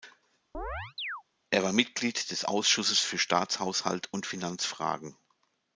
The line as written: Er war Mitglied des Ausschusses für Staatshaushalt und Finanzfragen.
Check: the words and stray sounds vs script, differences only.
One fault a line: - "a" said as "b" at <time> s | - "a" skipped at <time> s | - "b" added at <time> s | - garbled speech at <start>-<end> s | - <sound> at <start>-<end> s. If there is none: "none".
- chirp at 0.5-1.2 s